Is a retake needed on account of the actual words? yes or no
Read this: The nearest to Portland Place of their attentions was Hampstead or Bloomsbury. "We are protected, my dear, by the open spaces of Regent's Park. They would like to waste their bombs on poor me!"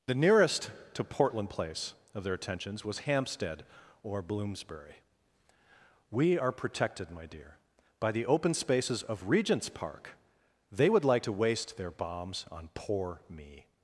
no